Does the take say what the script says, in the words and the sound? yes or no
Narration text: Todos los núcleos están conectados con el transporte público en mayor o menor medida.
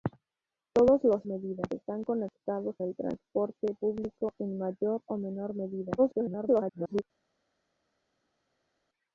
no